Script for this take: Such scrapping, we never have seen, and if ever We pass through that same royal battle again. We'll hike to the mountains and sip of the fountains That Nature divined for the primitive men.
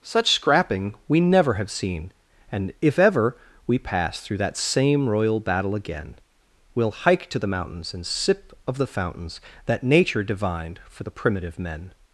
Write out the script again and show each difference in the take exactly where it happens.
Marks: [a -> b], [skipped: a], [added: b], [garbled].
Such scrapping, we never have seen, and if ever We pass through that same royal battle again. We'll hike to the mountains and sip of the fountains That Nature divined for the primitive men.